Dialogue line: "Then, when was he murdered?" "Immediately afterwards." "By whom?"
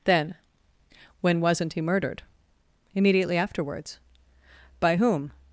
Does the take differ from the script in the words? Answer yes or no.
yes